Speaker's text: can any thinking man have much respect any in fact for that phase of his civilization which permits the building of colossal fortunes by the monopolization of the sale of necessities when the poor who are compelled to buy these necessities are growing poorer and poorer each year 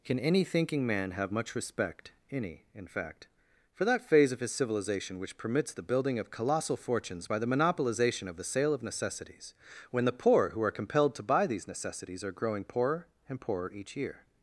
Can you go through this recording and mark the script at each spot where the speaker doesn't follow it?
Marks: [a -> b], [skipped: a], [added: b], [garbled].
can any thinking man have much respect any in fact for that phase of his civilization which permits the building of colossal fortunes by the monopolization of the sale of necessities when the poor who are compelled to buy these necessities are growing poorer and poorer each year